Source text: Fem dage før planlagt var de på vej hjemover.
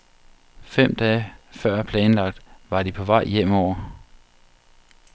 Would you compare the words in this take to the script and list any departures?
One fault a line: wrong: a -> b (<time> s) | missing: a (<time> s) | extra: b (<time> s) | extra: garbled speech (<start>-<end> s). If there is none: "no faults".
no faults